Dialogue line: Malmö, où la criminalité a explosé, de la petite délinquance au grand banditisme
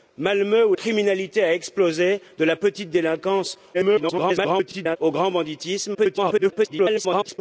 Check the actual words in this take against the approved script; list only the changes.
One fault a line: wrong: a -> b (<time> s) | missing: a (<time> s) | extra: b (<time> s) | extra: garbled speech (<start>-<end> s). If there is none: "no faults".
missing: la (0.7 s)
extra: garbled speech (3.7-5.0 s)
extra: garbled speech (5.9-7.4 s)